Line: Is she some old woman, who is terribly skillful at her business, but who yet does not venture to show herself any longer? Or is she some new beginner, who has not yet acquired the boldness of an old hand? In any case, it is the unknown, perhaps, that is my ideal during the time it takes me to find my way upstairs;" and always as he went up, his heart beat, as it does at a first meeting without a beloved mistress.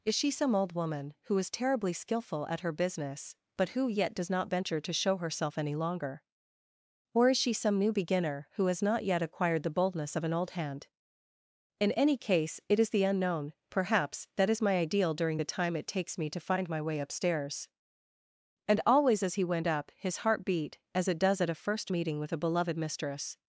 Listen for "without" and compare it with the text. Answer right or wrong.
wrong